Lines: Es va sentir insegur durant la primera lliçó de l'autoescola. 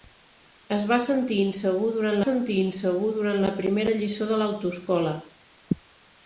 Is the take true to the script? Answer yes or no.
no